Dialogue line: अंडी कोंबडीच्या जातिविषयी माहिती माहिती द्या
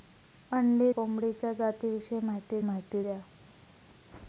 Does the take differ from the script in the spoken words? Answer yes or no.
no